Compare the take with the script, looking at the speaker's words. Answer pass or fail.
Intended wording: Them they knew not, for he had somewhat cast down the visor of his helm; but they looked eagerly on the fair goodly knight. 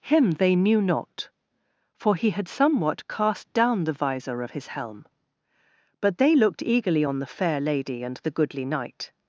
fail